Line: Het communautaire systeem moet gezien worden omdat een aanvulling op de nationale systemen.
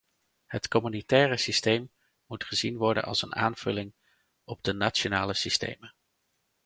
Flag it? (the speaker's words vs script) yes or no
yes